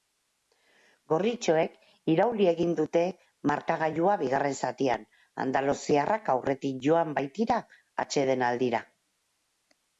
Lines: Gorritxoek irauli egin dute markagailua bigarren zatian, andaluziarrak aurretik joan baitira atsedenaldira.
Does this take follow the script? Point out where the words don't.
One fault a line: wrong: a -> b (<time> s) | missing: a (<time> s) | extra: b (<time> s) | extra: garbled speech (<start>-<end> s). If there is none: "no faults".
no faults